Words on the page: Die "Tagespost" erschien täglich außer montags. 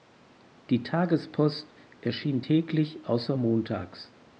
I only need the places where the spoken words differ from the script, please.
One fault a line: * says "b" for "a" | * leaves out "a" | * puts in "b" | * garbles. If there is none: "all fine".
all fine